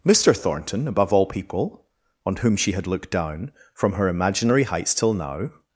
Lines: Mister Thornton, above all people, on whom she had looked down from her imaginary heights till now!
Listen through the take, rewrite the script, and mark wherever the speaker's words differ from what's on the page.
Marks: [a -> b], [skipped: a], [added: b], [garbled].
Mister Thornton, above all people, on whom she had looked down from her imaginary heights till now!